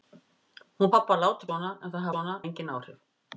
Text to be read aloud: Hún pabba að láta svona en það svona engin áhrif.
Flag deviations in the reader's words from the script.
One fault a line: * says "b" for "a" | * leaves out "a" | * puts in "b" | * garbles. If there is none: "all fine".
all fine